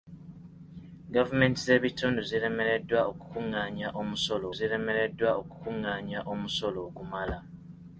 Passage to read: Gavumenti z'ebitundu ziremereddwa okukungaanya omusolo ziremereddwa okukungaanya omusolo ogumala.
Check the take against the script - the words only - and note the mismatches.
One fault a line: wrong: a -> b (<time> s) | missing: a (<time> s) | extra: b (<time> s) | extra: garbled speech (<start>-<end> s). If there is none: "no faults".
no faults